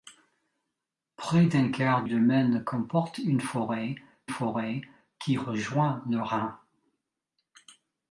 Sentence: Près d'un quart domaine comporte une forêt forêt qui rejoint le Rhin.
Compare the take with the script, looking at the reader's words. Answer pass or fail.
pass